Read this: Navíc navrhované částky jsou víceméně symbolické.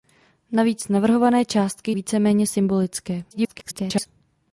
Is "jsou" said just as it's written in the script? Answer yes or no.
no